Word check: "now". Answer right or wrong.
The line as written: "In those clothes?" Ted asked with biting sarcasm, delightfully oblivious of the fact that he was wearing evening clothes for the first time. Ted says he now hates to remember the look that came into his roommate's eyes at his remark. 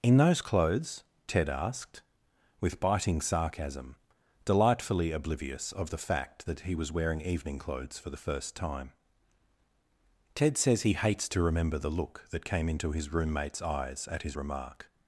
wrong